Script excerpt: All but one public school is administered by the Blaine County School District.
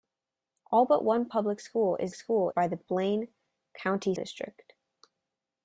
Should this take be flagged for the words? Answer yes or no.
yes